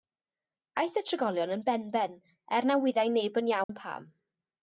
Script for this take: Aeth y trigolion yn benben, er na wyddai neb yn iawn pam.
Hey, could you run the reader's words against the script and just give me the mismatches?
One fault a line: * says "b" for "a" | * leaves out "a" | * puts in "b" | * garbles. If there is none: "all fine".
all fine